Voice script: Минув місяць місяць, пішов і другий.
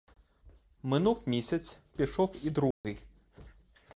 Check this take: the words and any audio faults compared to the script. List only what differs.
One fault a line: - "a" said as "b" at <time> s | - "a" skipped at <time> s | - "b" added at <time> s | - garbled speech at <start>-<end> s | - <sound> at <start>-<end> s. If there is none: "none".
- "місяць" skipped at 1.8 s
- dropout at 2.7-2.8 s